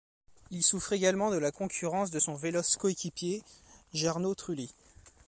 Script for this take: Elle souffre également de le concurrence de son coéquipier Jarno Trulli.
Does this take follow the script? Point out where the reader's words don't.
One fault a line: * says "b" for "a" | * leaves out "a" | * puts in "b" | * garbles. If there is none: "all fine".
* says "Il" for "Elle"
* says "la" for "le"
* puts in "véloce"